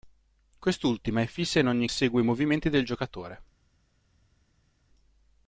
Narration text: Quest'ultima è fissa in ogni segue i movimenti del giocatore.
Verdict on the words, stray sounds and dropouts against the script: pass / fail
pass